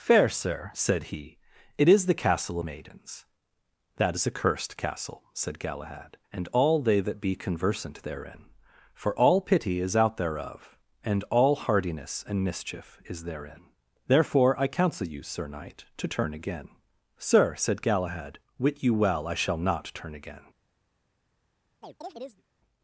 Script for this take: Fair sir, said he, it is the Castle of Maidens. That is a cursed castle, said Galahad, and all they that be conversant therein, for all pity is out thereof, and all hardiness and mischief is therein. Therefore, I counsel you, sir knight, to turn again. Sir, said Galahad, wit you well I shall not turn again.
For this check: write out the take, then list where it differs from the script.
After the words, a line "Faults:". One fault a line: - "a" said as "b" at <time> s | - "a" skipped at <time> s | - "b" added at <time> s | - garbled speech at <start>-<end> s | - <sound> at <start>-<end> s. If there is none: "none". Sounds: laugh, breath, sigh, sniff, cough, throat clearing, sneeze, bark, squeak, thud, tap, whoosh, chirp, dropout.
Fair sir, said he, it is the Castle Maidens. That is a cursed castle, said Galahad, and all they that be conversant therein, for all pity is out thereof, and all hardiness and mischief is therein. Therefore, I counsel you, sir knight, to turn again. Sir, said Galahad, wit you well I shall not turn again.
Faults:
- "of" skipped at 2.6 s
- chirp at 21.8-22.4 s